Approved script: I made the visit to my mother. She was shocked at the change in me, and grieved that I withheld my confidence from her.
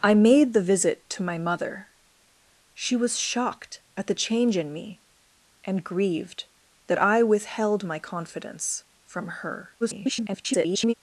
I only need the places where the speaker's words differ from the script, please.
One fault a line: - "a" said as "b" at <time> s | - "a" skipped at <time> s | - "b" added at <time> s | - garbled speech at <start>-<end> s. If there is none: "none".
- garbled speech at 9.8-10.9 s